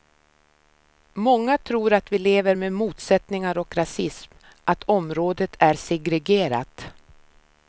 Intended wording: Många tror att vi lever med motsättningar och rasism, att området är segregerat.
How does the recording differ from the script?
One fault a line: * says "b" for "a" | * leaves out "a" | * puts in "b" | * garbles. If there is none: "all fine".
all fine